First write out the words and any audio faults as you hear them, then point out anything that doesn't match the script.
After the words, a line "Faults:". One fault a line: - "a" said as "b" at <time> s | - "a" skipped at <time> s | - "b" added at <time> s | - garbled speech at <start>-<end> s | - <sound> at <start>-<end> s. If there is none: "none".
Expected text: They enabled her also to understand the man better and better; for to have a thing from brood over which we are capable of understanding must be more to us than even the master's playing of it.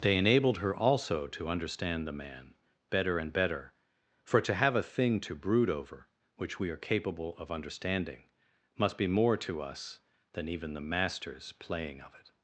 They enabled her also to understand the man better and better; for to have a thing to brood over which we are capable of understanding must be more to us than even the master's playing of it.
Faults:
- "from" said as "to" at 5.2 s